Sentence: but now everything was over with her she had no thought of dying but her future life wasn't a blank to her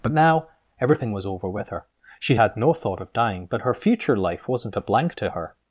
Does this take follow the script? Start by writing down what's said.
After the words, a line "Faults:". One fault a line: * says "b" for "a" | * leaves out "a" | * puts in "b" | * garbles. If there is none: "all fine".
but now everything was over with her she had no thought of dying but her future life wasn't a blank to her
Faults:
all fine